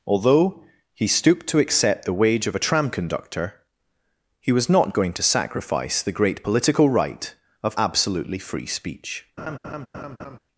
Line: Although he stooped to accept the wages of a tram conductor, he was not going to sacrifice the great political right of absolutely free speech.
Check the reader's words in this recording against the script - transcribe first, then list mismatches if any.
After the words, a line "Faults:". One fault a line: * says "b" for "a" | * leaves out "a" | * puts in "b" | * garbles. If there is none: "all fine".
Although he stooped to accept the wage of a tram conductor, he was not going to sacrifice the great political right of absolutely free speech.
Faults:
* says "wage" for "wages"